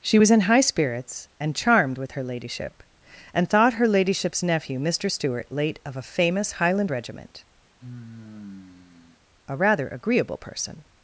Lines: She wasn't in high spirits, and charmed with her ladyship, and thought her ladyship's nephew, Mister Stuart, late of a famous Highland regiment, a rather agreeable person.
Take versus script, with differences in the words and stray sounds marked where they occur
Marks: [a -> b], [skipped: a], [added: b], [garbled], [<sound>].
She [wasn't -> was] in high spirits, and charmed with her ladyship, and thought her ladyship's nephew, Mister Stuart, late of a famous Highland regiment, [sigh] a rather agreeable person.